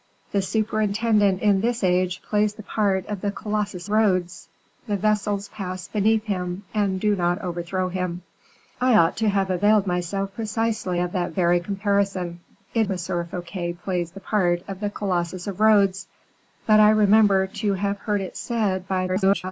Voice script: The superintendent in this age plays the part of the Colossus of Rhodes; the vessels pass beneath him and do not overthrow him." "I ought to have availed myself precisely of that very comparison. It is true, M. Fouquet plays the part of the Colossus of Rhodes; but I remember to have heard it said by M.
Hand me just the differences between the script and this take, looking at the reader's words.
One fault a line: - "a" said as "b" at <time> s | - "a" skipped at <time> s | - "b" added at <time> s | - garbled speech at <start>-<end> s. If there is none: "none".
- "of" skipped at 3.9 s
- "is true" skipped at 12.9 s
- garbled speech at 19.1-19.5 s